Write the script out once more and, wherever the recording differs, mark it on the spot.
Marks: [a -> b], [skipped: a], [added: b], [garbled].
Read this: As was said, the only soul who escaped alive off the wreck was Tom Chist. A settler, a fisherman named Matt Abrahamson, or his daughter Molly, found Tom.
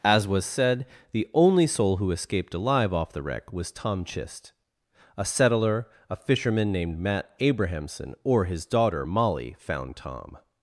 As was said, the only soul who escaped alive off the wreck was Tom Chist. A settler, a fisherman named Matt Abrahamson, or his daughter Molly, found Tom.